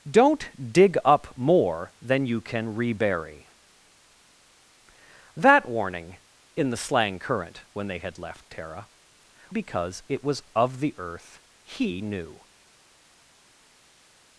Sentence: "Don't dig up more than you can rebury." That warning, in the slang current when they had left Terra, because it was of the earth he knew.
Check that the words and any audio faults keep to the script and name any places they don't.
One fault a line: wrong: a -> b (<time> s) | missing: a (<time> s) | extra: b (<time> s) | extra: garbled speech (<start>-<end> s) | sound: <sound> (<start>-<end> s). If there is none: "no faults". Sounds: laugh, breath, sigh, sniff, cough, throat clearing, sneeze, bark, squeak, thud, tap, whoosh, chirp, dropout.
no faults